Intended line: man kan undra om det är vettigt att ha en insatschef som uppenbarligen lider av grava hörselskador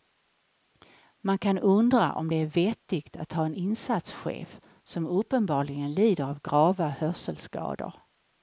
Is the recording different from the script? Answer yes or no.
no